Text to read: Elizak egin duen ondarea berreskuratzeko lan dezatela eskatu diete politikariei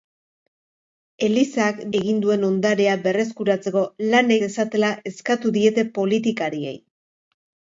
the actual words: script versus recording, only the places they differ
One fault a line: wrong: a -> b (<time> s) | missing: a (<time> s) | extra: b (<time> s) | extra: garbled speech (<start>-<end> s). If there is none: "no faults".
no faults